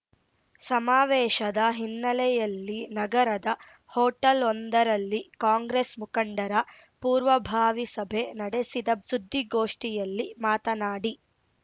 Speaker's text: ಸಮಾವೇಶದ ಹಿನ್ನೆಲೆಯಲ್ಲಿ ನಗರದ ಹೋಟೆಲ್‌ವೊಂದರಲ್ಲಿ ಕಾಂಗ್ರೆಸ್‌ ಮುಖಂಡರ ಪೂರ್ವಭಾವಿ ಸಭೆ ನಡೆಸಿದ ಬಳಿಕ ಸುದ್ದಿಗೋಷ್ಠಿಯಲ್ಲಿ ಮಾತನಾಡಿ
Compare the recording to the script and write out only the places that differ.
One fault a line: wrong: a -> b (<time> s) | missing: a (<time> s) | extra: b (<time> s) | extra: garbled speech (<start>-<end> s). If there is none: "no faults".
missing: ಬಳಿಕ (8.9 s)